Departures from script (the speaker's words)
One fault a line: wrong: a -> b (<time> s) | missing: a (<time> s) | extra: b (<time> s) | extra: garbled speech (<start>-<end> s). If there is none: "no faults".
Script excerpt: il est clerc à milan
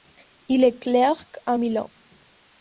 no faults